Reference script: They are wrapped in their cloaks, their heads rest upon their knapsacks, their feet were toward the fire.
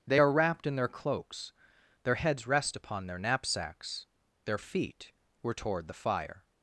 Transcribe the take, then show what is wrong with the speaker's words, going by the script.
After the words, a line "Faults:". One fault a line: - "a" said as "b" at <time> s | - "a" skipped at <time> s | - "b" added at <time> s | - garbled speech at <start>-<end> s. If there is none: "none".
They are wrapped in their cloaks, their heads rest upon their knapsacks, their feet were toward the fire.
Faults:
none